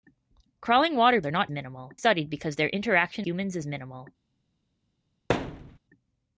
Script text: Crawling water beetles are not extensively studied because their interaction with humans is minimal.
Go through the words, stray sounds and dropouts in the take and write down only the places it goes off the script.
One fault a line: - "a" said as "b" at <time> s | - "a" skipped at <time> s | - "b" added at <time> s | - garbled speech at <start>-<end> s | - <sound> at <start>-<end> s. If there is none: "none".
- "beetles" skipped at 1.2 s
- "extensively" said as "minimal" at 1.5 s
- "with" skipped at 3.3 s
- thud at 5.3-5.8 s